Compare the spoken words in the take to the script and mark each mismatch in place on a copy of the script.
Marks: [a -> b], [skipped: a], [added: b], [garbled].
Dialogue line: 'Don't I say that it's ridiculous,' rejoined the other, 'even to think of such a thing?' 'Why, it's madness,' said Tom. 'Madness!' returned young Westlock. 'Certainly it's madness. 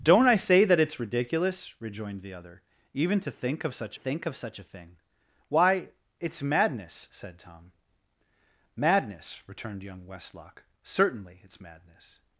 'Don't I say that it's ridiculous,' rejoined the other, 'even to think of such [added: think of such] a thing?' 'Why, it's madness,' said Tom. 'Madness!' returned young Westlock. 'Certainly it's madness.